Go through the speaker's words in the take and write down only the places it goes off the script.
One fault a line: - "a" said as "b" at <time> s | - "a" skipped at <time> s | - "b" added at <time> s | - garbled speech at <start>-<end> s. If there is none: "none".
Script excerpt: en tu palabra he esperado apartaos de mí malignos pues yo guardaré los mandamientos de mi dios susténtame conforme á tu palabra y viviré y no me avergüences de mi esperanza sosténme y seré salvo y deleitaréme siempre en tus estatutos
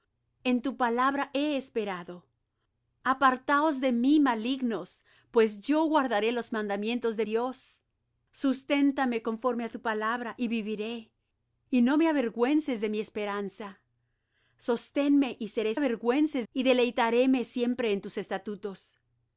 - "mi" skipped at 7.3 s
- "salvo" said as "avergüences" at 15.7 s